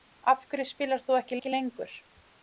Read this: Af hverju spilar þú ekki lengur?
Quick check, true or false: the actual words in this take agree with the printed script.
false